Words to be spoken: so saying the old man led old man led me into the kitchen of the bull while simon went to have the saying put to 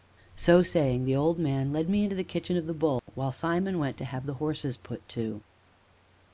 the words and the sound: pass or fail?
fail